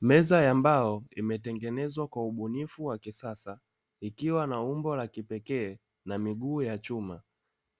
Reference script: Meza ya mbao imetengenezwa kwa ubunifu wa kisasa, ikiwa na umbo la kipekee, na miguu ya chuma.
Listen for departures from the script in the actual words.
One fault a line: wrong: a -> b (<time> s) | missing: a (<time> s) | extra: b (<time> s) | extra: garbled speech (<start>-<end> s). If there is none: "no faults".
no faults